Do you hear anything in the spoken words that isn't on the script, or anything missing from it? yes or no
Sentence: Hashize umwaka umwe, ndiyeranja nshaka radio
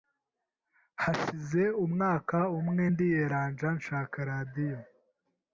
no